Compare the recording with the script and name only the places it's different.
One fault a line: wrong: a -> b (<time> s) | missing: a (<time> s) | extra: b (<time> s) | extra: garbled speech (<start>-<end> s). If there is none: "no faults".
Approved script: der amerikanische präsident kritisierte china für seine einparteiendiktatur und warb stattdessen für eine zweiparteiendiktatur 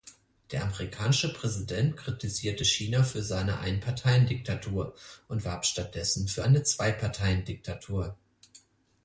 no faults